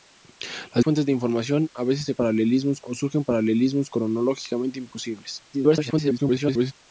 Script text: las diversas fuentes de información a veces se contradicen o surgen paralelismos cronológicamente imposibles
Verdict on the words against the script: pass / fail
fail